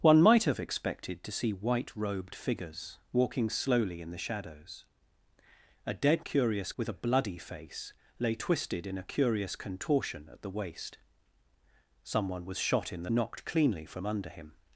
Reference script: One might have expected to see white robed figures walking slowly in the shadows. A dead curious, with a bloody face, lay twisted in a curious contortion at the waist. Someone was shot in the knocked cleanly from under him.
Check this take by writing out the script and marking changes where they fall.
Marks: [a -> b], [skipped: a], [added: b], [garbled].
One might have expected to see white robed figures walking slowly in the shadows. A dead curious, with a bloody face, lay twisted in a curious contortion at the waist. Someone was shot in the knocked cleanly from under him.